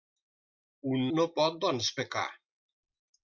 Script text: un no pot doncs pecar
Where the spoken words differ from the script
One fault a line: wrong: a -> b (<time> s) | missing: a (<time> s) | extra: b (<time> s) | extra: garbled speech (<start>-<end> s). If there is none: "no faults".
no faults